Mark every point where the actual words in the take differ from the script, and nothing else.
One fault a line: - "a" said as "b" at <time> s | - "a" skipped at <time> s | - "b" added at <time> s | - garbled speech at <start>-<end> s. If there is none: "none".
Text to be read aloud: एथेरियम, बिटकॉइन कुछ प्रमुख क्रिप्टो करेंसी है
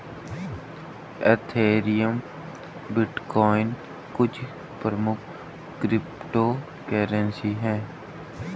none